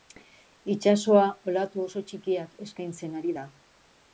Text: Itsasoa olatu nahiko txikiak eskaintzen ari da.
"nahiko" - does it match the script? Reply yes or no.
no